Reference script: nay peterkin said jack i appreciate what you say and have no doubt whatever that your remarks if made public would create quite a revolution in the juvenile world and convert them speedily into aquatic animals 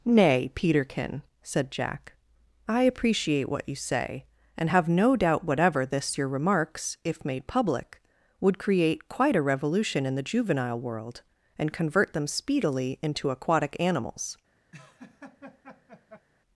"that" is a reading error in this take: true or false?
true